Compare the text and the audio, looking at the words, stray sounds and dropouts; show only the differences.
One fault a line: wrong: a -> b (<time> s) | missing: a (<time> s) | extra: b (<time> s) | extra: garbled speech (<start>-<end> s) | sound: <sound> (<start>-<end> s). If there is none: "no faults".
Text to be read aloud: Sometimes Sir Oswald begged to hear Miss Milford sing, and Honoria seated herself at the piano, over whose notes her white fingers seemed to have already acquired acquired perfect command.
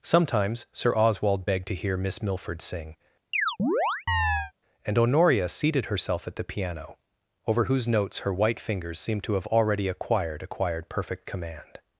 sound: chirp (3.3-4.5 s)